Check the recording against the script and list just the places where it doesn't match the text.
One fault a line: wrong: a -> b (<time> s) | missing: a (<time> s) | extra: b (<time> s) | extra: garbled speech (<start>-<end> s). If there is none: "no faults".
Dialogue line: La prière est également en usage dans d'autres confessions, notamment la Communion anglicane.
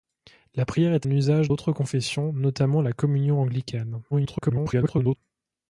missing: également (1.1 s)
missing: dans (1.5 s)
extra: garbled speech (4.1-5.2 s)